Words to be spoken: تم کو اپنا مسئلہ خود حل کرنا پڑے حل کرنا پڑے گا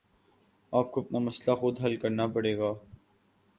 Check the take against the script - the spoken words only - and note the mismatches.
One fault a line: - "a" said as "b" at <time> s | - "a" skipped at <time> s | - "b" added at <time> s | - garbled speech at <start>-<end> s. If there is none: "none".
- "تم" said as "آپ" at 0.7 s
- "حل کرنا پڑے" skipped at 2.6 s